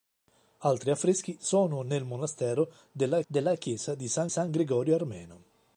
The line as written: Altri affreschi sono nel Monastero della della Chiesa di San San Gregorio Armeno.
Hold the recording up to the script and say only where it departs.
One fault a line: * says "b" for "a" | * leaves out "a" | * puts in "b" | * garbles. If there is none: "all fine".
all fine